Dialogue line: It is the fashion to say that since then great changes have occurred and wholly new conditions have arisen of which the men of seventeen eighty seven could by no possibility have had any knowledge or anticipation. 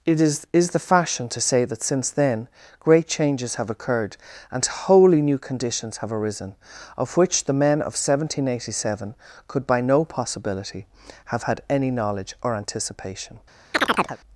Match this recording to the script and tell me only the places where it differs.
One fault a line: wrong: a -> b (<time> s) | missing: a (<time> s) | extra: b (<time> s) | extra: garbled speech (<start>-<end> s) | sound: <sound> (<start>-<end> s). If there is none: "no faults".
extra: is (0.5 s)
sound: chirp (13.7-14.2 s)